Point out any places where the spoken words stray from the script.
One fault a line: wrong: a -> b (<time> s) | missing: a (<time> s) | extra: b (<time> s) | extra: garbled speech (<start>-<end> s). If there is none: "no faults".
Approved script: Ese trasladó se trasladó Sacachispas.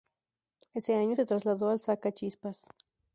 wrong: trasladó -> año (0.9 s)
extra: al (1.7 s)